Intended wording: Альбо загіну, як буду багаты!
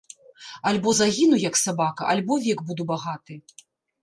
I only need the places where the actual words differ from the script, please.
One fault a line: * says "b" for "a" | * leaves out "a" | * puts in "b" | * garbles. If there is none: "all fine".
* puts in "сабака альбо век"